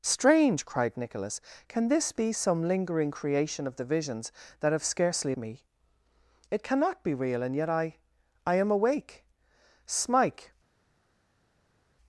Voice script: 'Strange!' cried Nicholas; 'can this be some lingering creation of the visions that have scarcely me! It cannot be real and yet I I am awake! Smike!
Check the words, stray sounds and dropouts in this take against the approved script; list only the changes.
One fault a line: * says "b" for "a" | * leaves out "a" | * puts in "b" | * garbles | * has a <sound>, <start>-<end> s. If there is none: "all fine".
all fine